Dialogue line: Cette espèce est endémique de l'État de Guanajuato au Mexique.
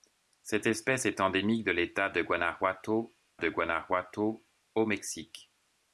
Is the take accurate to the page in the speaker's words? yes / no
no